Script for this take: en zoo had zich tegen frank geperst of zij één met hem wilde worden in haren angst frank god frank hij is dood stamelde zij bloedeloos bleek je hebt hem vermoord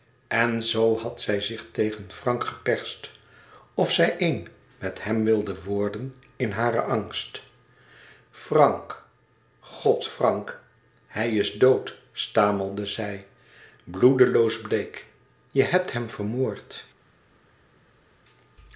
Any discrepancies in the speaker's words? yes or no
yes